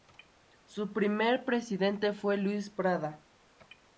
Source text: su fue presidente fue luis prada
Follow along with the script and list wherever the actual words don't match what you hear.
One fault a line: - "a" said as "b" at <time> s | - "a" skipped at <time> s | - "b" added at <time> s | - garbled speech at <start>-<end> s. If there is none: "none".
- "fue" said as "primer" at 0.9 s